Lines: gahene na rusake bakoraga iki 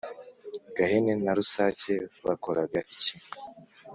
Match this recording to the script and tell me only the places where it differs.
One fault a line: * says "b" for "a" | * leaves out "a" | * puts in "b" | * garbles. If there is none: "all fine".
all fine